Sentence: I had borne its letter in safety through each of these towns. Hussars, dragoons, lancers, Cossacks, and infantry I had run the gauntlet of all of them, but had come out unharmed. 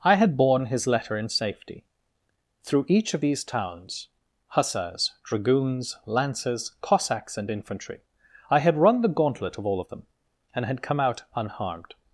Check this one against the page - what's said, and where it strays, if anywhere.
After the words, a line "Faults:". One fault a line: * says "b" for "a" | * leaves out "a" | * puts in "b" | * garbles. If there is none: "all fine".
I had borne his letter in safety through each of these towns. Hussars, dragoons, lancers, Cossacks, and infantry I had run the gauntlet of all of them, and had come out unharmed.
Faults:
* says "his" for "its"
* says "and" for "but"